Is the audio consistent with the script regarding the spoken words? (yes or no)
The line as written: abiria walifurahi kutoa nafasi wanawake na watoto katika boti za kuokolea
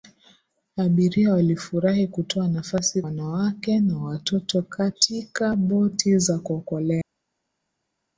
yes